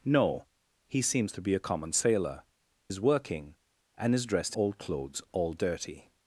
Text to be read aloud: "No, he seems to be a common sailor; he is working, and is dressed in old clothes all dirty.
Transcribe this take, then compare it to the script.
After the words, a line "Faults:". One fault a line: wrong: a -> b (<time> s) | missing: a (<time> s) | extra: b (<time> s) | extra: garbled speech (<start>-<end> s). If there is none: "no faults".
"No, he seems to be a common sailor; is working, and is dressed old clothes all dirty.
Faults:
missing: he (2.4 s)
missing: in (4.5 s)